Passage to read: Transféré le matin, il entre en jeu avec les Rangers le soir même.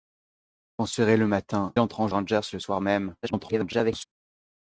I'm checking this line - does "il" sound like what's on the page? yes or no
no